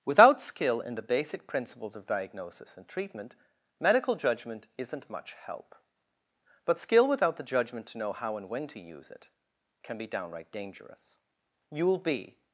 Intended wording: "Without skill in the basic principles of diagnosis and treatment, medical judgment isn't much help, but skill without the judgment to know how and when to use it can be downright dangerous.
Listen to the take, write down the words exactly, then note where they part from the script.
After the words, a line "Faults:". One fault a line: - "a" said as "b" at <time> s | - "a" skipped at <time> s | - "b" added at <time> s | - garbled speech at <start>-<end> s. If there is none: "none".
"Without skill in the basic principles of diagnosis and treatment, medical judgment isn't much help, but skill without the judgment to know how and when to use it can be downright dangerous. You'll be
Faults:
- "You'll be" added at 11.7 s